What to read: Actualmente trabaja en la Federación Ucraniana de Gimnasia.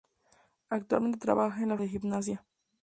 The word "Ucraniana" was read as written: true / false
false